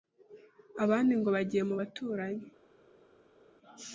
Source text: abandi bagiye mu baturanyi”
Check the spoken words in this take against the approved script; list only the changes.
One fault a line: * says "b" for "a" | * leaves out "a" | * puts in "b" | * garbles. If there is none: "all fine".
* puts in "ngo"